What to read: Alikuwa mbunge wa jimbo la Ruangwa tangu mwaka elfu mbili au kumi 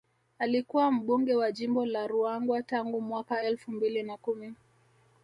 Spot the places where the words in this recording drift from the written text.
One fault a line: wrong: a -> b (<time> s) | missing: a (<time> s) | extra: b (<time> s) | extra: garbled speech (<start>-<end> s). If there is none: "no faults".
wrong: au -> na (4.0 s)